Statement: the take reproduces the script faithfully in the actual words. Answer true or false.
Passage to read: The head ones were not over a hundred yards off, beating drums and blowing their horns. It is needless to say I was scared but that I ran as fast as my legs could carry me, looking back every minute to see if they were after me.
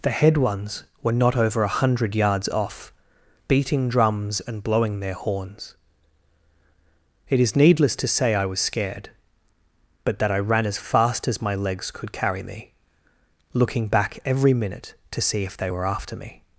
true